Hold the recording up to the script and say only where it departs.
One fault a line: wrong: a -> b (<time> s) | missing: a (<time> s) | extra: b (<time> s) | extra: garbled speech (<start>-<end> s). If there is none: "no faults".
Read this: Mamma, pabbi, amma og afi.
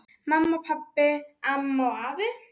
no faults